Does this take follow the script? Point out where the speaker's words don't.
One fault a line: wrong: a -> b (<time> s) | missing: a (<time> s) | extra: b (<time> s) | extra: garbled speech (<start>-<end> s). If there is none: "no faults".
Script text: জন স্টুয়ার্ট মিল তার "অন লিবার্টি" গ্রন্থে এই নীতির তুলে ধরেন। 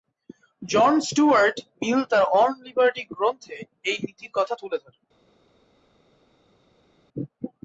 extra: কথা (4.3 s)